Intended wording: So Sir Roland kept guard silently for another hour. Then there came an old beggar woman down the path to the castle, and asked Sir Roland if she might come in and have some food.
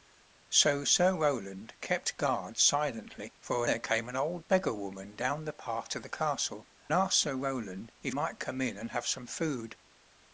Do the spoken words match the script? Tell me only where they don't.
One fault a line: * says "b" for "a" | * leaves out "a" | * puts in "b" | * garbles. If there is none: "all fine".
* leaves out "another hour Then"
* leaves out "and"
* leaves out "she"